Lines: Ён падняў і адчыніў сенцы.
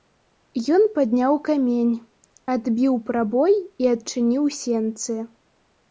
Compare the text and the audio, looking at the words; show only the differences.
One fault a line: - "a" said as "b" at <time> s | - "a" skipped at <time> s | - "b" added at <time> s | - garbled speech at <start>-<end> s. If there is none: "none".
- "камень адбіў прабой" added at 1.5 s